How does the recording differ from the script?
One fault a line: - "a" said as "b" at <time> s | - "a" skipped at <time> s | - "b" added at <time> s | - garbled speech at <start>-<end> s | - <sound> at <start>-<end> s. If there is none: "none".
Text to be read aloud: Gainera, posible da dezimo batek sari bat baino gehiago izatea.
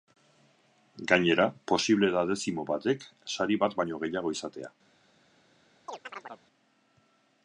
- chirp at 5.9-6.4 s